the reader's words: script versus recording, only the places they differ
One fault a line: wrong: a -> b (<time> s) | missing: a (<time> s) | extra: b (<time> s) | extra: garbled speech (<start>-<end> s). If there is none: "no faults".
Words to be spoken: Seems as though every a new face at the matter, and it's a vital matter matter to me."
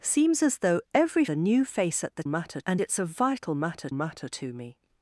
no faults